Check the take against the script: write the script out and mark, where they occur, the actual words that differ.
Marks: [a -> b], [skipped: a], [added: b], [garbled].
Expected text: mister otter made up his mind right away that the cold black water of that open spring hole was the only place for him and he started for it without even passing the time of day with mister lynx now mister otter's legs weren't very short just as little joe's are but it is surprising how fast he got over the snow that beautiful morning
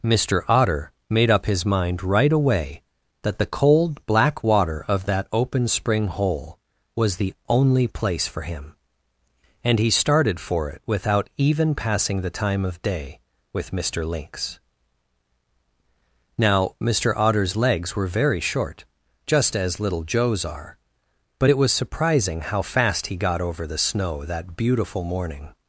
mister otter made up his mind right away that the cold black water of that open spring hole was the only place for him and he started for it without even passing the time of day with mister lynx now mister otter's legs [weren't -> were] very short just as little joe's are but it [is -> was] surprising how fast he got over the snow that beautiful morning